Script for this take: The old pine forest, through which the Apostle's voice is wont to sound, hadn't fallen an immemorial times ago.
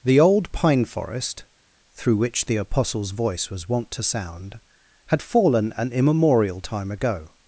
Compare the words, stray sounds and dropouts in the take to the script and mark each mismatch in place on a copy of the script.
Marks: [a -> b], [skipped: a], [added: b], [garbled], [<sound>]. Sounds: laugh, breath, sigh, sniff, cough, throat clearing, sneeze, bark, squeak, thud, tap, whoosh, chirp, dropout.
The old pine forest, through which the Apostle's voice [is -> was] wont to sound, [hadn't -> had] fallen an immemorial [times -> time] ago.